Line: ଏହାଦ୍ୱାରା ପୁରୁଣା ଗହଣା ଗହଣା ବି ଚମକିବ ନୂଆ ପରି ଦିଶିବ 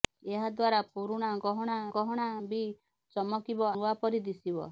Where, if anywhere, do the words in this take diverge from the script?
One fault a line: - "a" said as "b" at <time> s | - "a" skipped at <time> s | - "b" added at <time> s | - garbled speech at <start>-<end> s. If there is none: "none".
none